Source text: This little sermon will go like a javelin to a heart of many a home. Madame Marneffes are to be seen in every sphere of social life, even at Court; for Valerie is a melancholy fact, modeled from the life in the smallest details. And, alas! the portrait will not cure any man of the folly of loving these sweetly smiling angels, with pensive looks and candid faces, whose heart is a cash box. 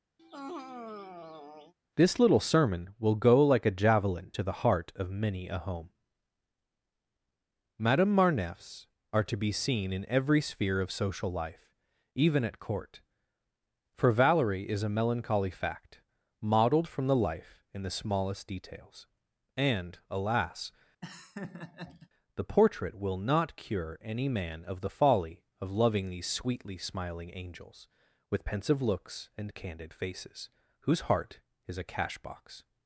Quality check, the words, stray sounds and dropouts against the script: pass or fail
fail